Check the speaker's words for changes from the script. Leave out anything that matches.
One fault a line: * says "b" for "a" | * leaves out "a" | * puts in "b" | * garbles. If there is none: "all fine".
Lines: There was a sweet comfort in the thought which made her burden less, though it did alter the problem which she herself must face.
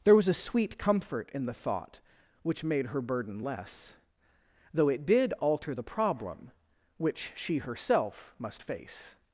all fine